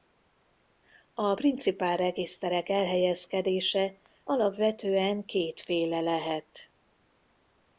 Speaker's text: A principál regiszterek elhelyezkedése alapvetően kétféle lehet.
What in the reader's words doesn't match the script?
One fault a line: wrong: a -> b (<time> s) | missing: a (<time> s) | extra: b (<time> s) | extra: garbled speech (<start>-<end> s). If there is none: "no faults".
no faults